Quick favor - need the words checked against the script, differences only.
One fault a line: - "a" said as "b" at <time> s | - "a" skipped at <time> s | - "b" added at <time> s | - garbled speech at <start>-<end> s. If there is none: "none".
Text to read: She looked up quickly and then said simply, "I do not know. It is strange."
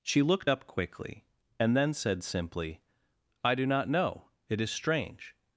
none